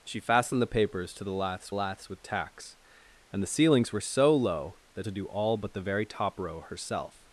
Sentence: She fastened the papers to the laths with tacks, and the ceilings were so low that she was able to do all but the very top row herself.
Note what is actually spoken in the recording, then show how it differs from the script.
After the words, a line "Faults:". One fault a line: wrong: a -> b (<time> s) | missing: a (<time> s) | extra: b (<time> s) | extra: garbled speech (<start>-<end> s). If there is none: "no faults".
She fastened the papers to the laths laths with tacks, and the ceilings were so low that to do all but the very top row herself.
Faults:
extra: laths (1.7 s)
missing: she was able (5.1 s)